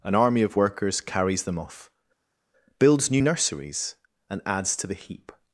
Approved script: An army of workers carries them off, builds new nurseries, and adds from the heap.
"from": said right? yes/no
no